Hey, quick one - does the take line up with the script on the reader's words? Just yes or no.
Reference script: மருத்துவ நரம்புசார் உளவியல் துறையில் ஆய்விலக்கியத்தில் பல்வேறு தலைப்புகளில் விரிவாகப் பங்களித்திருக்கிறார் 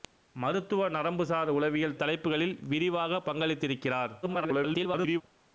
no